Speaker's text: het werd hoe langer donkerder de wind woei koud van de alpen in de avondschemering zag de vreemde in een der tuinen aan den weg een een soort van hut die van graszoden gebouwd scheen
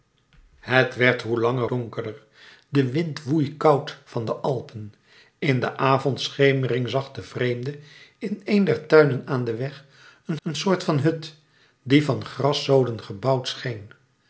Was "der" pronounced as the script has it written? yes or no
yes